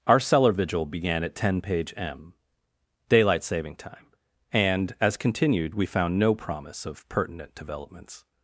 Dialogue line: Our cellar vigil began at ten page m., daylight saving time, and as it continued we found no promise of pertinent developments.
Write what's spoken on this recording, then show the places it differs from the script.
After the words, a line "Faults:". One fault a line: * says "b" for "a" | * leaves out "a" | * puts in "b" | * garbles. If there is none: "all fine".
Our cellar vigil began at ten page m., daylight saving time, and as continued we found no promise of pertinent developments.
Faults:
* leaves out "it"